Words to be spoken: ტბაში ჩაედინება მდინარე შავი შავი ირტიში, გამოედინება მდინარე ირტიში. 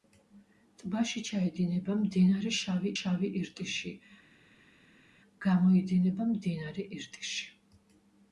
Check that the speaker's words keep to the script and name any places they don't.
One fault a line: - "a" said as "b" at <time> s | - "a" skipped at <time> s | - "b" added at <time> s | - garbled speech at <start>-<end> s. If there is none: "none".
none